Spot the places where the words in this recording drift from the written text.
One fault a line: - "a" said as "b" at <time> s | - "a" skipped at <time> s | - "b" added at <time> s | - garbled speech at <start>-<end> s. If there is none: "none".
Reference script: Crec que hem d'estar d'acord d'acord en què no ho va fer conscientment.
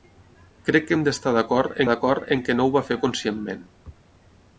none